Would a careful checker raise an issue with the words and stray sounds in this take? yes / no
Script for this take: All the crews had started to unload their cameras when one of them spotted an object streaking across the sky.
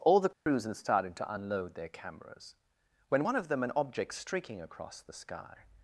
yes